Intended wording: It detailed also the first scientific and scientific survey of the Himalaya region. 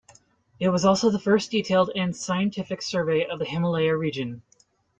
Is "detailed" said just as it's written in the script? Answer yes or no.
no